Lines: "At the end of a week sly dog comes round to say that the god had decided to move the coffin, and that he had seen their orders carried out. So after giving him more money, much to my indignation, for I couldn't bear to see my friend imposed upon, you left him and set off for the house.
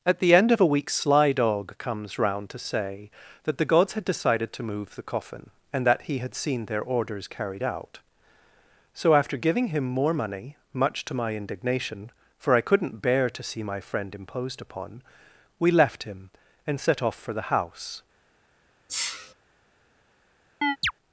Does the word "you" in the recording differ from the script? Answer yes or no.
yes